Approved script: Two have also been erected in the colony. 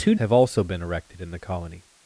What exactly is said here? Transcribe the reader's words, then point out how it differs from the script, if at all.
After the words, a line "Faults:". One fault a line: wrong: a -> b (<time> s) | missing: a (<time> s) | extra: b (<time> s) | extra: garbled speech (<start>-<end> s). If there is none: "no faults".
Two have also been erected in the colony.
Faults:
no faults